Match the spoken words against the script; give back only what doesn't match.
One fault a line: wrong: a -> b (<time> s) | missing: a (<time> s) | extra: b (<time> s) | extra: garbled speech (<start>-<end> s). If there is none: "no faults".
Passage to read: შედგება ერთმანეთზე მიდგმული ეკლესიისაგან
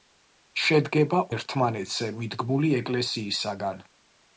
no faults